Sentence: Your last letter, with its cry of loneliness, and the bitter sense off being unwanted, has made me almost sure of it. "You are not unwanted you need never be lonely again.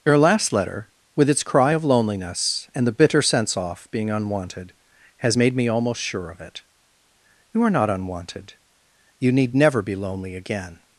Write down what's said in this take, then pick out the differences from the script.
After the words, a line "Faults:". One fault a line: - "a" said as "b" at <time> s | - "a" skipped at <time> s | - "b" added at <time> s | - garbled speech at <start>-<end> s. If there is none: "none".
Your last letter, with its cry of loneliness, and the bitter sense off being unwanted, has made me almost sure of it. "You are not unwanted you need never be lonely again.
Faults:
none